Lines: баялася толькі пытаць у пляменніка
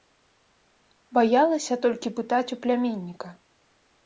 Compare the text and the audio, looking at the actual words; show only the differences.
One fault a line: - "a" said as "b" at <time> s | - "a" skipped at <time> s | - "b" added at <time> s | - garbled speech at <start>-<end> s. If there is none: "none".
none